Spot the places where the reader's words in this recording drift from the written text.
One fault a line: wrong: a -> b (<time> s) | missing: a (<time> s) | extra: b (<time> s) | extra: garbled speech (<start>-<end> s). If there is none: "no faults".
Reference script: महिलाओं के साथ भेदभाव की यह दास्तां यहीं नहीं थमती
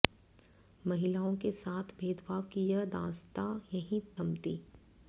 missing: नहीं (4.0 s)